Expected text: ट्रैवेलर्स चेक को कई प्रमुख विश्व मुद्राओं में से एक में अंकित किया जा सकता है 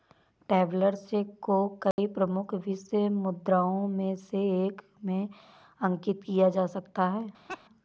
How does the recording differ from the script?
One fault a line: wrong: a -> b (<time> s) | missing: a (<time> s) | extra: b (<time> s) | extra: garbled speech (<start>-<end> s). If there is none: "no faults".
no faults